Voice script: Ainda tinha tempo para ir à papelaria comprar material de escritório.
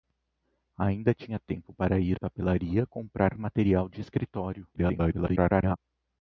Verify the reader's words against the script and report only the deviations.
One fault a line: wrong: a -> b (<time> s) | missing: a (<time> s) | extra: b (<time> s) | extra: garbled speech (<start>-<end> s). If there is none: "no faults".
missing: à (2.2 s)
extra: garbled speech (4.7-5.8 s)